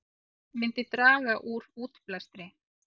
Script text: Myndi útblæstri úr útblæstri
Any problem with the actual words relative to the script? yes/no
yes